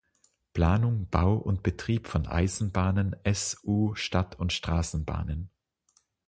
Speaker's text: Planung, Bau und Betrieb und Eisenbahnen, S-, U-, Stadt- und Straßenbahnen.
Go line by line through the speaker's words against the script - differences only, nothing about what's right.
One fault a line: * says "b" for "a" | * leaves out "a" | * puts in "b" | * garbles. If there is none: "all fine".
* says "von" for "und"